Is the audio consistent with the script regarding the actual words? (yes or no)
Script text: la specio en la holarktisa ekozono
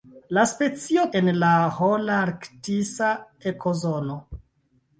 yes